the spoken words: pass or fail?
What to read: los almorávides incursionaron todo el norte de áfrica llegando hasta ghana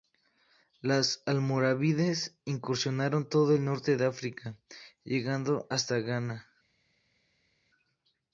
pass